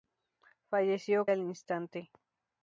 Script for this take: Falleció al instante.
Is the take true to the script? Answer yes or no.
yes